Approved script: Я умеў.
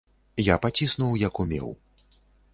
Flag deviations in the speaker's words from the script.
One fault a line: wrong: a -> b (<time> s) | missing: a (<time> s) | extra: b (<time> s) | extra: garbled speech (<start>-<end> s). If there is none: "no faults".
extra: паціснуў як (0.6 s)